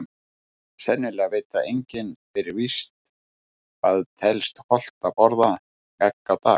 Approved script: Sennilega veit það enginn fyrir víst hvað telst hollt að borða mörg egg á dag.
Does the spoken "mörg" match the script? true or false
false